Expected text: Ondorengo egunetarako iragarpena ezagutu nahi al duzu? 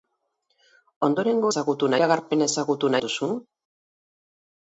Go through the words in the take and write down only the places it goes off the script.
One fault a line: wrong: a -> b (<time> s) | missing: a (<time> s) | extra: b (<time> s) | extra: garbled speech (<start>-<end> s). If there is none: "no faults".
wrong: egunetarako -> ezagutu (1.5 s)
missing: nahi (2.9 s)